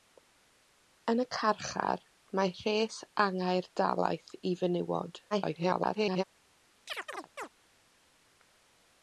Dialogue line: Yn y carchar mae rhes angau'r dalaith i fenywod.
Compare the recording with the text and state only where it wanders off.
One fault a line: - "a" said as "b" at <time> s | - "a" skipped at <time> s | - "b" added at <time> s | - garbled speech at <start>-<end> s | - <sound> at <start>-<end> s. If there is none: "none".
- garbled speech at 5.3-6.2 s
- chirp at 6.9-7.5 s